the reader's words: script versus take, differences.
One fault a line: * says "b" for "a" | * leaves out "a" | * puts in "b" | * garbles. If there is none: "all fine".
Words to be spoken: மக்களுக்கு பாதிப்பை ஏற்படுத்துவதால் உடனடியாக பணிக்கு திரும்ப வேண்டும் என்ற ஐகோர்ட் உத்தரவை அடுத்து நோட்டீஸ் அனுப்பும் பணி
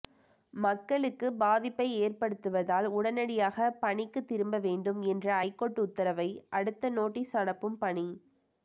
all fine